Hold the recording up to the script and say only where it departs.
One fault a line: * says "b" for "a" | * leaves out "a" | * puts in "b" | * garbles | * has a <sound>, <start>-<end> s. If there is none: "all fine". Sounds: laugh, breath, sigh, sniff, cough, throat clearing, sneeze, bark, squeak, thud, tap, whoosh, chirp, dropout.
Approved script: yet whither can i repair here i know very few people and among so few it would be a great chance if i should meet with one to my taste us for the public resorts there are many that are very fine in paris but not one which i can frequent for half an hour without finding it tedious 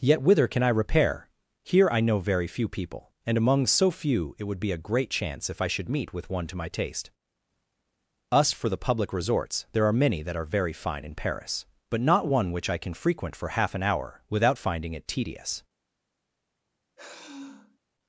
* has a sigh, 17.0-17.8 s